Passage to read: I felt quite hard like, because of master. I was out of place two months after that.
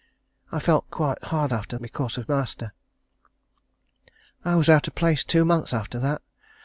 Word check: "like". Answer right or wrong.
wrong